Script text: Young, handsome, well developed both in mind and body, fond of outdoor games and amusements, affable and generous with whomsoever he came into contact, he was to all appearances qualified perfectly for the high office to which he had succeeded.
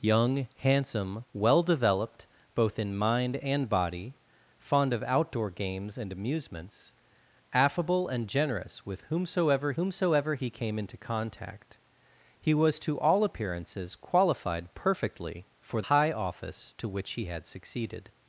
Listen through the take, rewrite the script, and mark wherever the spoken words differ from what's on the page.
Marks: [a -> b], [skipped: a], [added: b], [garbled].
Young, handsome, well developed both in mind and body, fond of outdoor games and amusements, affable and generous with whomsoever [added: whomsoever] he came into contact, he was to all appearances qualified perfectly for [skipped: the] high office to which he had succeeded.